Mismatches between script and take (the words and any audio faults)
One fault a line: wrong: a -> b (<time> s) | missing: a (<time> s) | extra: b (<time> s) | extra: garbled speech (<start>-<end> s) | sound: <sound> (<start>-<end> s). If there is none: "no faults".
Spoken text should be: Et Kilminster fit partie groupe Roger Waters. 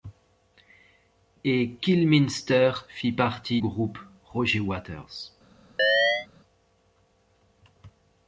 sound: chirp (5.8-6.3 s)